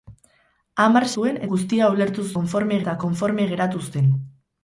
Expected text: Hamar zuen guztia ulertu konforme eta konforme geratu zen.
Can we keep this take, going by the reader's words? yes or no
yes